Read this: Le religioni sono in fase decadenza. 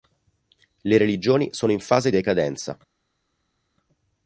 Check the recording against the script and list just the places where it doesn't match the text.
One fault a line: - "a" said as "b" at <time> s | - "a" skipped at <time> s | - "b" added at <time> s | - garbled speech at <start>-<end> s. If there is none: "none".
none